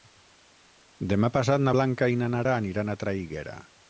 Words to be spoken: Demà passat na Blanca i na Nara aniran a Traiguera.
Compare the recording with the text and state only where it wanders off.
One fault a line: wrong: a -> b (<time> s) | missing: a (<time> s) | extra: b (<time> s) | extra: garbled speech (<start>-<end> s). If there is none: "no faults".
no faults